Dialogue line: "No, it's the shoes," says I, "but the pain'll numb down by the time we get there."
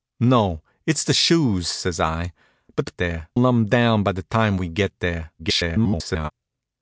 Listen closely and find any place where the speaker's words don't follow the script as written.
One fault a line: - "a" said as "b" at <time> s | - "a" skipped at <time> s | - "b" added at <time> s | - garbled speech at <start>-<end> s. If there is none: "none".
- "pain'll" said as "there" at 3.0 s
- garbled speech at 5.4-6.3 s